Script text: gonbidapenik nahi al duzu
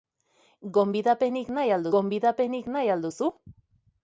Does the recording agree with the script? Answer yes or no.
no